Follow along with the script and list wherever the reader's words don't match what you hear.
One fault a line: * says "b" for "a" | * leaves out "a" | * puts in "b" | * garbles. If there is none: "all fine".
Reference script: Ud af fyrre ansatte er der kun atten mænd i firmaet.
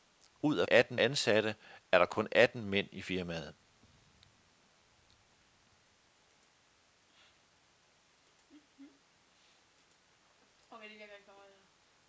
* says "atten" for "fyrre"